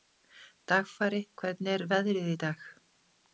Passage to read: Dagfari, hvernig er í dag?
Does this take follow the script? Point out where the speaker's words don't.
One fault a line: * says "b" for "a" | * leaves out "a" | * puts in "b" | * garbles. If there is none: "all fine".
* puts in "veðrið"